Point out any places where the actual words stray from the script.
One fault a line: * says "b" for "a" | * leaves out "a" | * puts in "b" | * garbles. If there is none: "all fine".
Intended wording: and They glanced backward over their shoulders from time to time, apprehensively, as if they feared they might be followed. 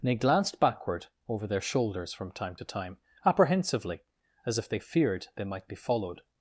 all fine